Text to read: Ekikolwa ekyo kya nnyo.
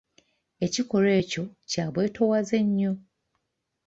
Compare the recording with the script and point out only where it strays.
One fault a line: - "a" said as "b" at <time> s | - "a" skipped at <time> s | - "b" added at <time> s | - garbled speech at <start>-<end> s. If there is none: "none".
- "bwetoowaze" added at 1.9 s